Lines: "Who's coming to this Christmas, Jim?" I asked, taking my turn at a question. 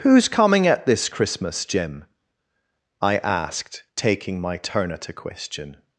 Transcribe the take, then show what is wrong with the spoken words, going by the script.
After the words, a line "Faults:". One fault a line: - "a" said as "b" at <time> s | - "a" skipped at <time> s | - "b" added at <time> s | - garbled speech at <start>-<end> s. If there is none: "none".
"Who's coming at this Christmas, Jim?" I asked, taking my turn at a question.
Faults:
- "to" said as "at" at 0.7 s